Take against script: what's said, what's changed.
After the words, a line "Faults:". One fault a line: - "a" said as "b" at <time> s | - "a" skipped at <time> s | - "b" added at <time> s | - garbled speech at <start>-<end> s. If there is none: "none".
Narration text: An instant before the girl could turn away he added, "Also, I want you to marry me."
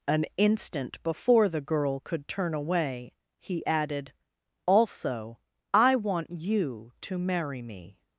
An instant before the girl could turn away he added, "Also, I want you to marry me."
Faults:
none